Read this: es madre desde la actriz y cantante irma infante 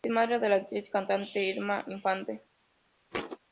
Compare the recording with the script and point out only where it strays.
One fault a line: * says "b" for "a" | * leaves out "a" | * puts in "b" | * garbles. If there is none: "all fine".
* says "de" for "desde"